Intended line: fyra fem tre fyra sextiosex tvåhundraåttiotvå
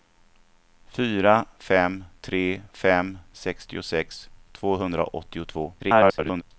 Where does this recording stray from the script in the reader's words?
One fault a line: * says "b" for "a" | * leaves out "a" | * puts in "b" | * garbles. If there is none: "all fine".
* says "fem" for "fyra"
* garbles